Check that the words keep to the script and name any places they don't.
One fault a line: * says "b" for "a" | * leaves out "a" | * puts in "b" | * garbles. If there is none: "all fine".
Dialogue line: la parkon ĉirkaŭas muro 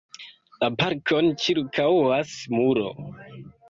all fine